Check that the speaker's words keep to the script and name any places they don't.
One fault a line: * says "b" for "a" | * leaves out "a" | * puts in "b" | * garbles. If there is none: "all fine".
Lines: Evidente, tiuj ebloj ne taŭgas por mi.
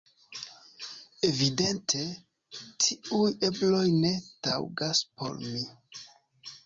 all fine